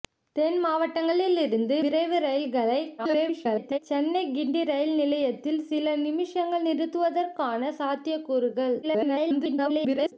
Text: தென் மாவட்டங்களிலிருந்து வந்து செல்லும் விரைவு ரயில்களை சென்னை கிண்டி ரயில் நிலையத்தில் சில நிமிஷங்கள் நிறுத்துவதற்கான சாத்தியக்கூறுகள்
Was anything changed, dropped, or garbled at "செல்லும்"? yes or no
yes